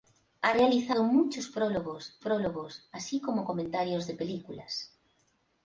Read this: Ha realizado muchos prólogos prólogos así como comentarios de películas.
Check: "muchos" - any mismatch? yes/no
no